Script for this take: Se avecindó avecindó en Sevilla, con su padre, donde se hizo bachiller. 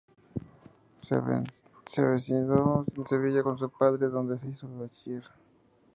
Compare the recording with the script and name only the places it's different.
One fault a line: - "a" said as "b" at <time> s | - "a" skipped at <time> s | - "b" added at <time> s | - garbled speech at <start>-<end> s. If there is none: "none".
- "avecindó" skipped at 2.9 s